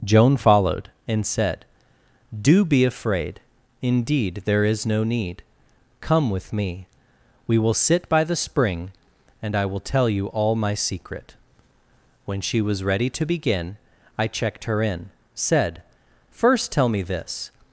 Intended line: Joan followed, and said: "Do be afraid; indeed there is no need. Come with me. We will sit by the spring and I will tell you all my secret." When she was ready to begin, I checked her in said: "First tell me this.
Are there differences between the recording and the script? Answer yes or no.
no